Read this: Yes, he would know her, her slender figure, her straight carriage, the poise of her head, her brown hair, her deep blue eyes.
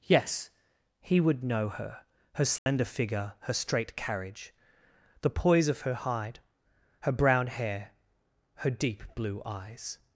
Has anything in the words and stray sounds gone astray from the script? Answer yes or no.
yes